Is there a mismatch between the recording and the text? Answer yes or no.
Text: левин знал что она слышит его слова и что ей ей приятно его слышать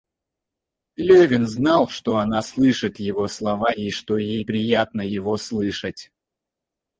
yes